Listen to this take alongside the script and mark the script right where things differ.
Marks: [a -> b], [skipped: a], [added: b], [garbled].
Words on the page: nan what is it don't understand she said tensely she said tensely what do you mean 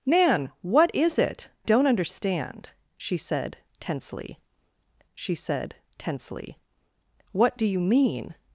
nan what is it don't understand she said tensely she said tensely what do you mean